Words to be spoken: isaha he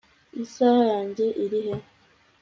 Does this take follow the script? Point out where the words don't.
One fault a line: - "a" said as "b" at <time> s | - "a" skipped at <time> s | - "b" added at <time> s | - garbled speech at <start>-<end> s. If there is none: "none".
- "yanjye iri" added at 0.9 s